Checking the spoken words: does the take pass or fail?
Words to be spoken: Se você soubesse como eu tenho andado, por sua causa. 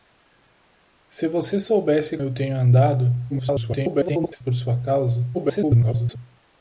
fail